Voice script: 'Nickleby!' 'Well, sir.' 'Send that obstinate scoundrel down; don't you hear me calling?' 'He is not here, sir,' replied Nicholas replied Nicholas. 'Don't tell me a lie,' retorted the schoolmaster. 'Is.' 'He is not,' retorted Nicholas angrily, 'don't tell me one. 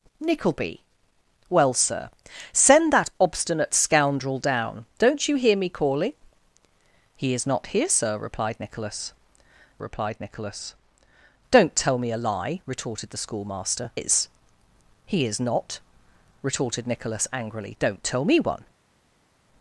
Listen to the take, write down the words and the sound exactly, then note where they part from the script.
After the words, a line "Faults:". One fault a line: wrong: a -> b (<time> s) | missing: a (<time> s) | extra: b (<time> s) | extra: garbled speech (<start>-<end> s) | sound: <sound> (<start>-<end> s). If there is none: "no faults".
'Nickleby!' 'Well, sir.' 'Send that obstinate scoundrel down; don't you hear me calling?' 'He is not here, sir,' replied Nicholas replied Nicholas. 'Don't tell me a lie,' retorted the schoolmaster. 'Is.' 'He is not,' retorted Nicholas angrily, 'don't tell me one.
Faults:
no faults